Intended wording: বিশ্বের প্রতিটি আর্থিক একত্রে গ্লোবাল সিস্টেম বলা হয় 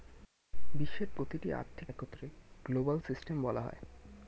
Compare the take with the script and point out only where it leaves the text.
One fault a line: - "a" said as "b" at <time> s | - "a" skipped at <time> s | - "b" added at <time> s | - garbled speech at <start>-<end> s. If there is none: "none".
none